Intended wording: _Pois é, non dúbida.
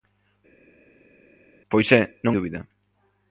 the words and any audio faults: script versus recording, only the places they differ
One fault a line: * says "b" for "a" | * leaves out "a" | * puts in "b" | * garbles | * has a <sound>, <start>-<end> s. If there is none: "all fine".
all fine